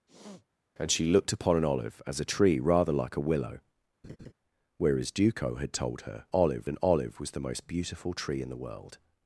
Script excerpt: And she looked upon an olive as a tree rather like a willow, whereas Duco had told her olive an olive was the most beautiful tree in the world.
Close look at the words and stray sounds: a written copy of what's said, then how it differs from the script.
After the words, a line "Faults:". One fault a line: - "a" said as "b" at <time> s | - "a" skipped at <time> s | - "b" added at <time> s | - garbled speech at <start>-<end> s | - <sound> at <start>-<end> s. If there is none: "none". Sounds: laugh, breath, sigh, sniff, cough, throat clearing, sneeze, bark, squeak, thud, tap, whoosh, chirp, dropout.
And she looked upon an olive as a tree rather like a willow, whereas Duco had told her olive an olive was the most beautiful tree in the world.
Faults:
- sniff at 0.1-0.5 s
- laugh at 4.0-4.3 s